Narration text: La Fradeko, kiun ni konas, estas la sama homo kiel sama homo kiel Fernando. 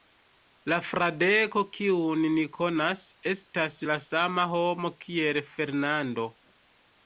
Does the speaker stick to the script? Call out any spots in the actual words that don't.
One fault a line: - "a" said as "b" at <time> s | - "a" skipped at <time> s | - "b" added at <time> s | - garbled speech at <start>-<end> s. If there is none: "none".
- "sama homo kiel" skipped at 5.4 s